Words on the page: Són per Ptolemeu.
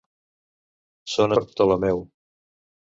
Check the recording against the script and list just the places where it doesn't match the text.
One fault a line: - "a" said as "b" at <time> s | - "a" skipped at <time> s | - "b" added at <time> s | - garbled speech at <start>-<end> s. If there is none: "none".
none